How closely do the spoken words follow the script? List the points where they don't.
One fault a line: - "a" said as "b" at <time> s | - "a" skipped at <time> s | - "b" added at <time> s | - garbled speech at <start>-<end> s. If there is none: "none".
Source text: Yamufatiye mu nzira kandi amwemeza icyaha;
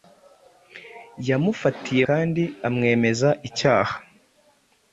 - "mu nzira" skipped at 2.0 s